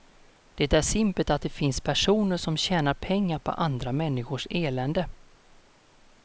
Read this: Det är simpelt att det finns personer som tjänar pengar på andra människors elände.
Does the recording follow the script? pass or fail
pass